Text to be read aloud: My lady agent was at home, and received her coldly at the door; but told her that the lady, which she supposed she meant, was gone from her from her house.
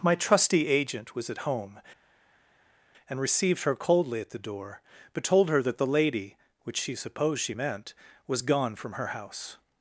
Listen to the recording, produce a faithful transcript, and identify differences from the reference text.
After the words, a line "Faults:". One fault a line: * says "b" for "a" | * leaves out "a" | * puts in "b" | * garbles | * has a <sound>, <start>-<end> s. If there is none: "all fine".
My trusty agent was at home, and received her coldly at the door; but told her that the lady, which she supposed she meant, was gone from her house.
Faults:
* says "trusty" for "lady"
* leaves out "from her"